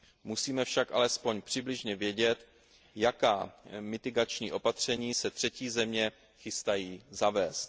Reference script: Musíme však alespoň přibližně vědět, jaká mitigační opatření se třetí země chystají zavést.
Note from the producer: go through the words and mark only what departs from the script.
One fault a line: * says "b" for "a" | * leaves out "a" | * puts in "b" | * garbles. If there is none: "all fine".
all fine